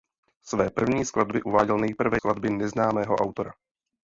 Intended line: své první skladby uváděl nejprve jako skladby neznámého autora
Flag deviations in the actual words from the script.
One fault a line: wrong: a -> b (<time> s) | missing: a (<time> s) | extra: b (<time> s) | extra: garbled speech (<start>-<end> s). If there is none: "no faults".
missing: jako (2.2 s)